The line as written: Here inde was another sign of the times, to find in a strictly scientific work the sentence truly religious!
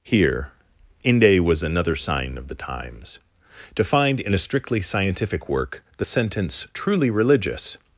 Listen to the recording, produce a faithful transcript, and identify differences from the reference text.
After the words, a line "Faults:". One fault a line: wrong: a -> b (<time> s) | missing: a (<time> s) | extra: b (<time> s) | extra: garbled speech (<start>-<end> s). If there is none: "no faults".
Here inde was another sign of the times, to find in a strictly scientific work the sentence truly religious!
Faults:
no faults